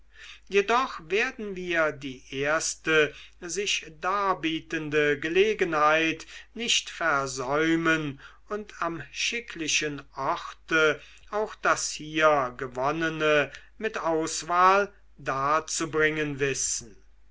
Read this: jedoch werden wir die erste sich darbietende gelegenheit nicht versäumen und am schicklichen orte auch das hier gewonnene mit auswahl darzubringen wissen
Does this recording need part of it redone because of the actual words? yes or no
no